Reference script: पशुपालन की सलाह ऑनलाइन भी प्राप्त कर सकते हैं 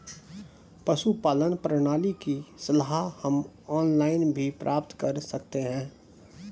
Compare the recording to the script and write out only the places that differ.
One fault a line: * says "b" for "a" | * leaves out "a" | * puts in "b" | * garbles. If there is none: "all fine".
* puts in "प्रणाली"
* puts in "हम"